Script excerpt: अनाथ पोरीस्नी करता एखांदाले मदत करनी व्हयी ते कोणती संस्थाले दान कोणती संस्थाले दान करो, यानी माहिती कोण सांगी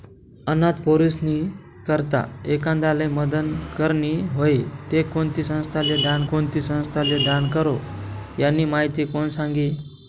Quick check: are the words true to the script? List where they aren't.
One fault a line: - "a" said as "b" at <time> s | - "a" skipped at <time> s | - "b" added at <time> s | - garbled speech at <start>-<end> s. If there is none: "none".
none